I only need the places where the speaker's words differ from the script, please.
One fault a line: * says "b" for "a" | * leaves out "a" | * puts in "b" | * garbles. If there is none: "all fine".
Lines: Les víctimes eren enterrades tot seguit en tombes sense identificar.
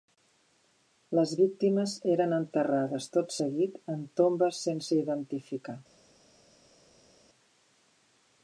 all fine